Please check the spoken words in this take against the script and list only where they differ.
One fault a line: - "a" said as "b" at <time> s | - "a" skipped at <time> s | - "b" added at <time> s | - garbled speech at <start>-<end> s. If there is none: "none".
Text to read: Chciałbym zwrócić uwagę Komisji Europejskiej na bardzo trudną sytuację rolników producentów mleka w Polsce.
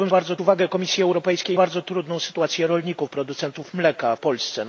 - "zwrócić" said as "bardzo" at 0.1 s
- "na" skipped at 1.6 s
- "w" skipped at 4.2 s